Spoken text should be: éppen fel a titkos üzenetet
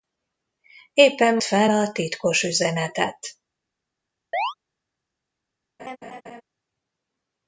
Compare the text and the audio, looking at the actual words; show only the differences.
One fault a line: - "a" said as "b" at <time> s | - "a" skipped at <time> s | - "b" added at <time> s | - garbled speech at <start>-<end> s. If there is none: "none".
none